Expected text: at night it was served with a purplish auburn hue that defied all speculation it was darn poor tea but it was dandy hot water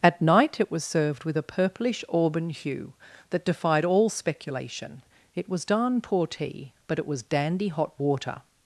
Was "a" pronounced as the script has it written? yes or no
yes